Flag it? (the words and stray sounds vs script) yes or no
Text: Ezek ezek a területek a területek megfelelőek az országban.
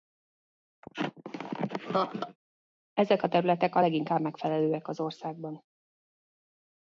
yes